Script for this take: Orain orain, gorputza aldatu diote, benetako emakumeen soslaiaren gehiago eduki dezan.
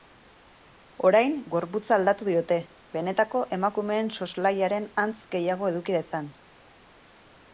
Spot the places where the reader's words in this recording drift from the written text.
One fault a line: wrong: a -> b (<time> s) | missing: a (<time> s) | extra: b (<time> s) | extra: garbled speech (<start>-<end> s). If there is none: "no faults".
missing: orain (1.4 s)
extra: antz (5.0 s)